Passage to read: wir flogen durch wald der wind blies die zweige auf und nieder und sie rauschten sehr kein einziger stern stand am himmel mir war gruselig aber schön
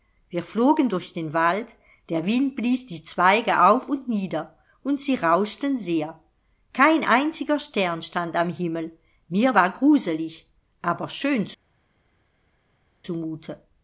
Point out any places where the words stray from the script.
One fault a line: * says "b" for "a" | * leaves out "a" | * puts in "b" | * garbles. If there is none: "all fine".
* puts in "den"